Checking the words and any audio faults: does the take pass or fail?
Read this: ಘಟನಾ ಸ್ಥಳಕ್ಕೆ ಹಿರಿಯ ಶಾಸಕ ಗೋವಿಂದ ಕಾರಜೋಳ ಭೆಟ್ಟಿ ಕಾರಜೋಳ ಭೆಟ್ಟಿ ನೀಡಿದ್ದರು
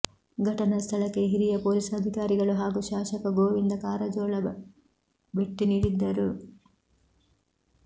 fail